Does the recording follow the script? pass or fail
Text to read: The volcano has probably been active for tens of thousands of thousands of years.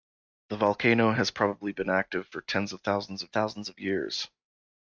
pass